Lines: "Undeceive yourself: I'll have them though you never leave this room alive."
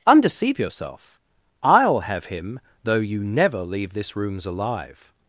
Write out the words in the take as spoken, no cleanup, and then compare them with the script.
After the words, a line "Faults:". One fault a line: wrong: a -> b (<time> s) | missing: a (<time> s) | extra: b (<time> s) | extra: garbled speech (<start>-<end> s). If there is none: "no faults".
"Undeceive yourself: I'll have him though you never leave this rooms alive."
Faults:
wrong: them -> him (2.2 s)
wrong: room -> rooms (4.2 s)